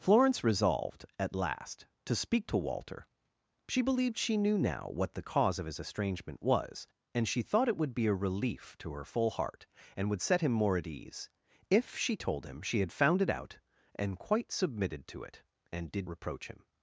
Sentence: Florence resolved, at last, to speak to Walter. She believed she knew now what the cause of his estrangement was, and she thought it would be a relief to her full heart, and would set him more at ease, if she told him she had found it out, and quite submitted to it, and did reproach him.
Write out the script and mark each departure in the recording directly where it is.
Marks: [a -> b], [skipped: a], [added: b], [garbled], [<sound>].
Florence resolved, at last, to speak to Walter. She believed she knew now what the cause of his estrangement was, and she thought it would be a relief to her full heart, and would set him more at ease, if she told him she had found it out, and quite submitted to it, and did reproach him.